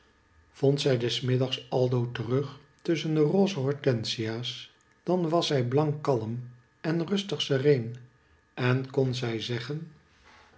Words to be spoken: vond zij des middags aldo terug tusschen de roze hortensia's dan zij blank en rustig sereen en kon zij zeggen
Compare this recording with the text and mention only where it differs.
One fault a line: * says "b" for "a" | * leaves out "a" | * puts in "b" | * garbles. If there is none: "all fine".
* puts in "was"
* puts in "kalm"